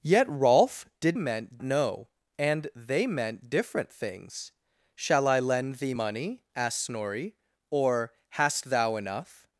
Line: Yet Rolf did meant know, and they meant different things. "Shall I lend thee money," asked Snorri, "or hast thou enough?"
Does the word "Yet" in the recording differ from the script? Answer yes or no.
no